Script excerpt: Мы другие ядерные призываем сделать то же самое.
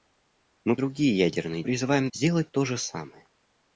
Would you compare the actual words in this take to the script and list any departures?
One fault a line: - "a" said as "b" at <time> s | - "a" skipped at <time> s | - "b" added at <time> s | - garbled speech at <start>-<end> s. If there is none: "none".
none